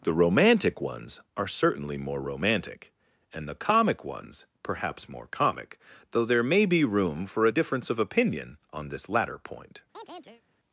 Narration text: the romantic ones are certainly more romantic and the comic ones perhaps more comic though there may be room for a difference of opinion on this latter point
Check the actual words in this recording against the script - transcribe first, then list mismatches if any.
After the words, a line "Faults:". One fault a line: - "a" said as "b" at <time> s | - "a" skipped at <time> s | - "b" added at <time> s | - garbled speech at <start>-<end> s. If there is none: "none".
the romantic ones are certainly more romantic and the comic ones perhaps more comic though there may be room for a difference of opinion on this latter point
Faults:
none